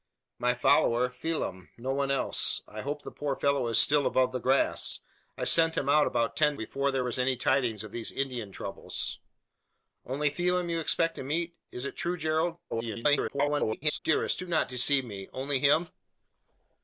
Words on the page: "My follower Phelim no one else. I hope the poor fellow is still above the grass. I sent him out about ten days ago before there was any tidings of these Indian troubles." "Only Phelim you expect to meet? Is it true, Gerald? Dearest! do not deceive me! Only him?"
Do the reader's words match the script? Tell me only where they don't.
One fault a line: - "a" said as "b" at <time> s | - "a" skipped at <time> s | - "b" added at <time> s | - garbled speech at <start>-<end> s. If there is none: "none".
- "days ago" skipped at 6.5 s
- garbled speech at 12.7-14.0 s